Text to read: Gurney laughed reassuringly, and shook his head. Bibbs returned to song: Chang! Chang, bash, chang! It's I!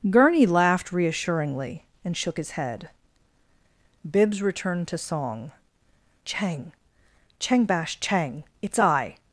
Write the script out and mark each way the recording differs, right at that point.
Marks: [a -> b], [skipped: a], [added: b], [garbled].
Gurney laughed reassuringly, and shook his head. Bibbs returned to song: Chang! Chang, bash, chang! It's I!